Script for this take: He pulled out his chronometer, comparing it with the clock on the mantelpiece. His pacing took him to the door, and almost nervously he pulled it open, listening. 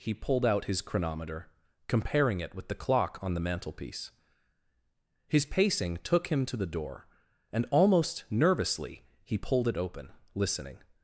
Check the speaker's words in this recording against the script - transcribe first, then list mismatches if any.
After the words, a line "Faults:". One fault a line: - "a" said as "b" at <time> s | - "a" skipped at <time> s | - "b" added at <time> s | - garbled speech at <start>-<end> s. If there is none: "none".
He pulled out his chronometer, comparing it with the clock on the mantelpiece. His pacing took him to the door, and almost nervously he pulled it open, listening.
Faults:
none